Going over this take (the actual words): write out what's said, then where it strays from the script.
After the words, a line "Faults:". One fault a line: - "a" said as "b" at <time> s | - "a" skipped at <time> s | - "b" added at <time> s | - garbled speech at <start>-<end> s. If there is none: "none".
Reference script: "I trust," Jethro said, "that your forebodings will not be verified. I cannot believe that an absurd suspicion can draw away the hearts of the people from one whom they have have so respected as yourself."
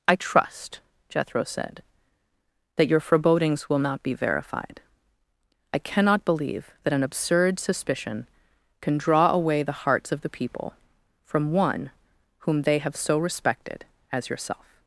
"I trust," Jethro said, "that your forebodings will not be verified. I cannot believe that an absurd suspicion can draw away the hearts of the people from one whom they have so respected as yourself."
Faults:
- "have" skipped at 13.0 s